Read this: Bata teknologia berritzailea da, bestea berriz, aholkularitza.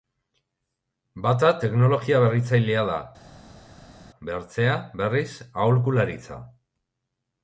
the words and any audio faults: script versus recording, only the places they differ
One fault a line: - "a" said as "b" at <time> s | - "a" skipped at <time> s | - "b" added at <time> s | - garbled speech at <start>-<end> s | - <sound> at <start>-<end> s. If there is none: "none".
none